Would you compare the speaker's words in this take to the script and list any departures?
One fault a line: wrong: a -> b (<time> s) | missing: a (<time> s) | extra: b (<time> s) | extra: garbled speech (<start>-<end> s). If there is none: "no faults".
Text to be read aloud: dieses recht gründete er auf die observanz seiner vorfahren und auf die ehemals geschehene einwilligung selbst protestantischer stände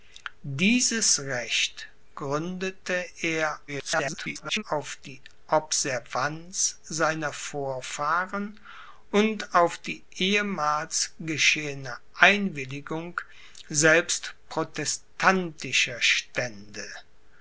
extra: garbled speech (3.7-4.6 s)